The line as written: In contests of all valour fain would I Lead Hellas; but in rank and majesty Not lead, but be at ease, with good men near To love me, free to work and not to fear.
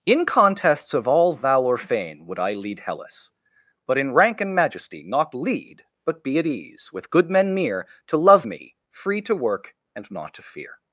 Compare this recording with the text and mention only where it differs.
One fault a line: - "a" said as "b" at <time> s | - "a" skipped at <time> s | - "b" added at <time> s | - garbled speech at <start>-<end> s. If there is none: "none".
none